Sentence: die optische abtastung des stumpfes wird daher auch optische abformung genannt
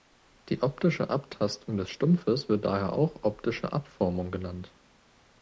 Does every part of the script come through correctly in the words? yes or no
yes